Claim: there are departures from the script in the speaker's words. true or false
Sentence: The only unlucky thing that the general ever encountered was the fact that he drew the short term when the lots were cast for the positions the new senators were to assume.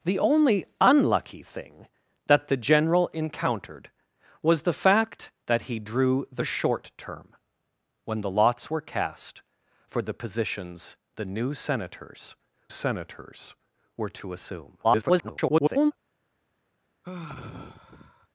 true